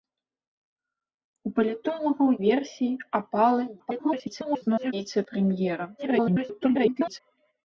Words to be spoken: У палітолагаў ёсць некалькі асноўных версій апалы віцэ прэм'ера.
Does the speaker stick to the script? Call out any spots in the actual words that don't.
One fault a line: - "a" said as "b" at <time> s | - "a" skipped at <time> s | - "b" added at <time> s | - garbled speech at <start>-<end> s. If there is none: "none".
- "ёсць некалькі асноўных" skipped at 2.3 s
- garbled speech at 3.8-4.9 s
- garbled speech at 6.0-7.2 s